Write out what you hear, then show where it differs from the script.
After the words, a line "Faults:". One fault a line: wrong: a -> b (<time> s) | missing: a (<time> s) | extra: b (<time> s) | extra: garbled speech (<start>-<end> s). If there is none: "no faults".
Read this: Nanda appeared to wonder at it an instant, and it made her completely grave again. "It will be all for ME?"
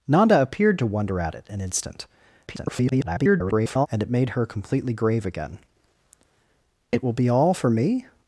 Nanda appeared to wonder at it an instant, [garbled] and it made her completely grave again. "It will be all for ME?"
Faults:
extra: garbled speech (2.5-3.9 s)